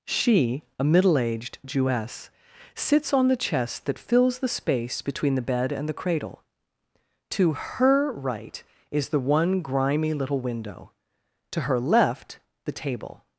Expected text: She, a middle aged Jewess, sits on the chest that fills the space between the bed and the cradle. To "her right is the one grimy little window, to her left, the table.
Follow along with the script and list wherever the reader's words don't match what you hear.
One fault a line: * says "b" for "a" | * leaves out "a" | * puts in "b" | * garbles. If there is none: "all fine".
all fine